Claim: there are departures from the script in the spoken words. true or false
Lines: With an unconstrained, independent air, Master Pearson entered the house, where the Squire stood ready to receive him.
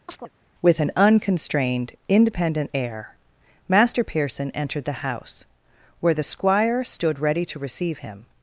false